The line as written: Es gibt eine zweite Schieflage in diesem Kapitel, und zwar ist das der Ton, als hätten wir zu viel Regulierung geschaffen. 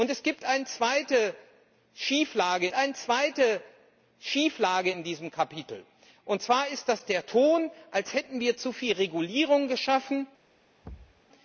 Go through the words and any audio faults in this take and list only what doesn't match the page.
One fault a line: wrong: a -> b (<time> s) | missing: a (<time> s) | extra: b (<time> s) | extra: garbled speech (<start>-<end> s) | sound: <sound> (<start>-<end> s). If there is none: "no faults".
extra: eine zweite Schieflage (2.7 s)
sound: thud (10.8-11.2 s)